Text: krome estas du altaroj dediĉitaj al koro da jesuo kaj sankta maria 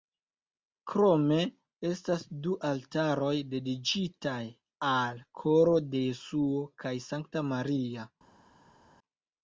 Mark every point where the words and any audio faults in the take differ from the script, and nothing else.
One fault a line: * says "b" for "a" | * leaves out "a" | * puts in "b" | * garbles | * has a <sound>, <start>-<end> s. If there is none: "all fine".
* says "de" for "da"